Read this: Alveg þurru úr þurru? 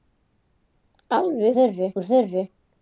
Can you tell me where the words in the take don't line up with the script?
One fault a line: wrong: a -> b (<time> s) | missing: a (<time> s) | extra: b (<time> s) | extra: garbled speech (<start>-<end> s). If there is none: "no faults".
no faults